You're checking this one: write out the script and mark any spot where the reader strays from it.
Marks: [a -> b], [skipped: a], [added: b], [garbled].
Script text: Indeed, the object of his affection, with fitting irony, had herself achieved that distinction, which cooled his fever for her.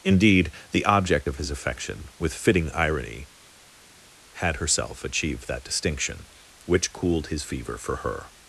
Indeed, the object of his affection, with fitting irony, had herself achieved that distinction, which cooled his fever for her.